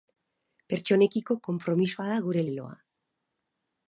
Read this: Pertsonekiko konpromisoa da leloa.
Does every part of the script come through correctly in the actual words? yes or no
no